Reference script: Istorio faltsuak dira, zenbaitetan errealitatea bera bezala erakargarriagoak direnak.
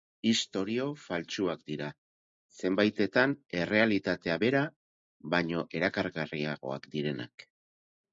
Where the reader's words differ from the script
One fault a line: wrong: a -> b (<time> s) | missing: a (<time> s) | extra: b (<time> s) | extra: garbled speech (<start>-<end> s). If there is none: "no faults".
wrong: bezala -> baino (5.4 s)